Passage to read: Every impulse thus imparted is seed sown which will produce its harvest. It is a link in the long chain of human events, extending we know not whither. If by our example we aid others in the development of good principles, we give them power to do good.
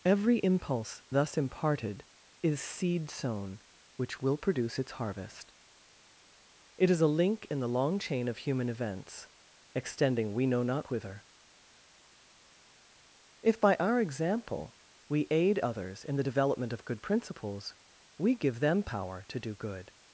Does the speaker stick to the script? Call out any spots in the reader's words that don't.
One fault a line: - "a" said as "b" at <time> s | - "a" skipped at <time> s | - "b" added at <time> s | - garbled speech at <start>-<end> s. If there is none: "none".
none